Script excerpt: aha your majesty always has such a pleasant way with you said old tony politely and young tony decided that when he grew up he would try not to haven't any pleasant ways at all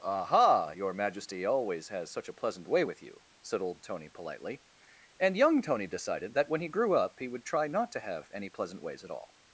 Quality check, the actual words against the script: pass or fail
fail